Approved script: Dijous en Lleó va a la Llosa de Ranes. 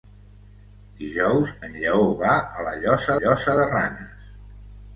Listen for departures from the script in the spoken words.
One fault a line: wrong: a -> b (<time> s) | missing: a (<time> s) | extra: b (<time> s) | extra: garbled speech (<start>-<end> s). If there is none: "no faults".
extra: Llosa (3.2 s)